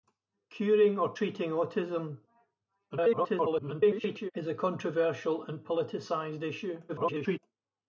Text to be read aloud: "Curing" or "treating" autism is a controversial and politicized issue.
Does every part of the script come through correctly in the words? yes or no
no